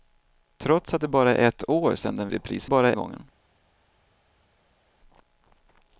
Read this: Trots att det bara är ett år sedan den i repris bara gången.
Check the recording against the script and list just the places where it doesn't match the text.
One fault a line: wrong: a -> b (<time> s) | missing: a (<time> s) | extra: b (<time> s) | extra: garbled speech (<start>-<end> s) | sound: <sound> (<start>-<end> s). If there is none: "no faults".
no faults